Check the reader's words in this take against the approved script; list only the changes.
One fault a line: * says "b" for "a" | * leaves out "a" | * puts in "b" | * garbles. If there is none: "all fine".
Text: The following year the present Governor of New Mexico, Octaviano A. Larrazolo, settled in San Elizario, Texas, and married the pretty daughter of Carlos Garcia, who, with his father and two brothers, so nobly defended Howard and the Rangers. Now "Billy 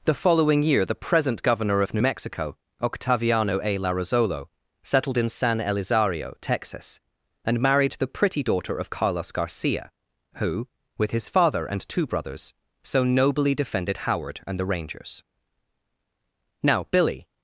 all fine